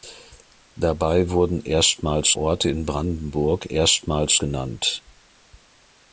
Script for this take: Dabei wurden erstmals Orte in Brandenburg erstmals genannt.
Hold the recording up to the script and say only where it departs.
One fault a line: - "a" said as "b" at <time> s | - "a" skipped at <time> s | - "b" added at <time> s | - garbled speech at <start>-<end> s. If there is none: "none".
none